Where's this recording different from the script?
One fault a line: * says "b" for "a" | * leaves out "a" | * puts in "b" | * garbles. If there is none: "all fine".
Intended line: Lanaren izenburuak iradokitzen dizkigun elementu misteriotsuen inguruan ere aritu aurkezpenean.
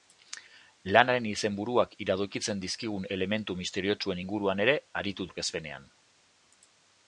all fine